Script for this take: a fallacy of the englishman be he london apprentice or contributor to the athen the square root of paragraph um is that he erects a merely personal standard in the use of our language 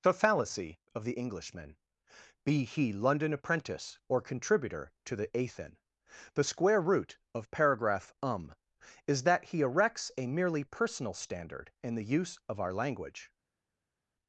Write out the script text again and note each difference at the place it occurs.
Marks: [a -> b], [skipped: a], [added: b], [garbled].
[a -> the] fallacy of the englishman be he london apprentice or contributor to the athen the square root of paragraph um is that he erects a merely personal standard in the use of our language